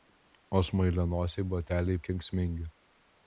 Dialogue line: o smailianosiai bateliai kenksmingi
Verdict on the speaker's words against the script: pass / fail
pass